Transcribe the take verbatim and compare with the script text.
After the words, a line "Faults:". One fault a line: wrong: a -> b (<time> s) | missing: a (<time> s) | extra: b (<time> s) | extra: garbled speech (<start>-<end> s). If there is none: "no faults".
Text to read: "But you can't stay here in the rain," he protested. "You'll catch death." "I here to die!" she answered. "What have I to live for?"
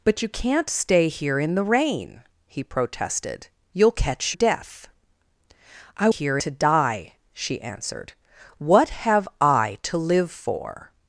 "But you can't stay here in the rain," he protested. "You'll catch death." "I here to die!" she answered. "What have I to live for?"
Faults:
no faults